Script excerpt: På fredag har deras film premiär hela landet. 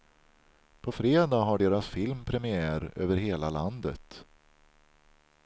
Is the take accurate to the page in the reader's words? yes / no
no